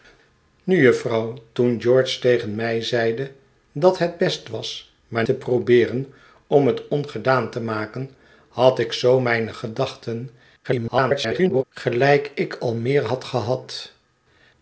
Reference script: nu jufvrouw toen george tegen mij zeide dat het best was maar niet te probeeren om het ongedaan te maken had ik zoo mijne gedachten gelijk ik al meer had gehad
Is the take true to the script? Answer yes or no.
no